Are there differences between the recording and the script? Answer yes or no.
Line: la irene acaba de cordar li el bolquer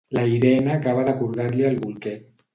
no